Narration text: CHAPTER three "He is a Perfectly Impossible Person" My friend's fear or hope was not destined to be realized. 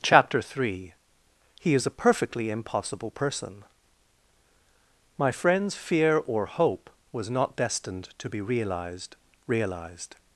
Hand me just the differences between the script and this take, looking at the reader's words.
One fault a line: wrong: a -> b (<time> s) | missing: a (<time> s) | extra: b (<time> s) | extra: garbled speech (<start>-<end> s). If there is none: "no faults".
extra: realized (9.4 s)